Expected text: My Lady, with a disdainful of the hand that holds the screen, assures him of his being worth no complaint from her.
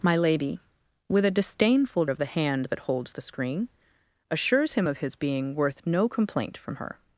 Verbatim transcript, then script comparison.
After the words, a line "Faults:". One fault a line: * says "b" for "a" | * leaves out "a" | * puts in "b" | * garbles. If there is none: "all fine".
My Lady, with a disdainful of the hand that holds the screen, assures him of his being worth no complaint from her.
Faults:
all fine